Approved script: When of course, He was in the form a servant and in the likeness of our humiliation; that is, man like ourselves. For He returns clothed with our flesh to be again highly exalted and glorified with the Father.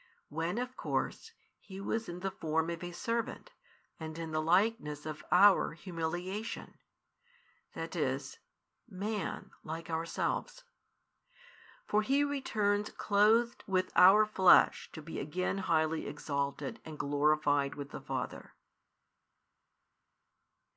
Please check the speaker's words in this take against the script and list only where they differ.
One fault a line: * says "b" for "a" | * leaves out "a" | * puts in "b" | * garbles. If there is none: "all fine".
* puts in "of"